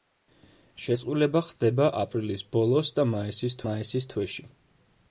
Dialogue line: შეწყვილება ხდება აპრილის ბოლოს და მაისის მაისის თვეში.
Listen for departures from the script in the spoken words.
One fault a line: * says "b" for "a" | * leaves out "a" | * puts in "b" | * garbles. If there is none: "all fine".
all fine